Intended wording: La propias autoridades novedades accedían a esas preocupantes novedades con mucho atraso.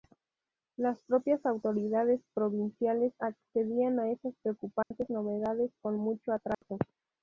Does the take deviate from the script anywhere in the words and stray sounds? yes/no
yes